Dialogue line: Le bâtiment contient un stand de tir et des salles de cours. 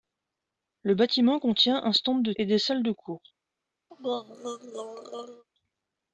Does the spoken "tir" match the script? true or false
false